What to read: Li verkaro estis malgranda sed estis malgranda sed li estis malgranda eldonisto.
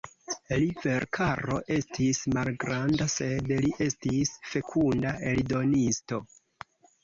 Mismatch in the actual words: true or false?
true